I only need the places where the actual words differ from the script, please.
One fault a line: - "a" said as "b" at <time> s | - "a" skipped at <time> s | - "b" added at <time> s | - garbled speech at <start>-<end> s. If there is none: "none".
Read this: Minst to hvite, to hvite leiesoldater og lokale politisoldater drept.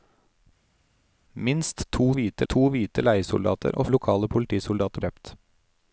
none